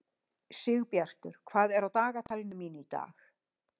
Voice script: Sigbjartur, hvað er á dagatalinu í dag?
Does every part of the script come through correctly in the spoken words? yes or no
no